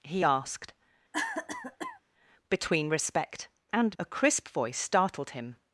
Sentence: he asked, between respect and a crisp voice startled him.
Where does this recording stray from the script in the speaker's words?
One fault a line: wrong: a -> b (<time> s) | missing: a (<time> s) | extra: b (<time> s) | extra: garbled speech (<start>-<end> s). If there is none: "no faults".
no faults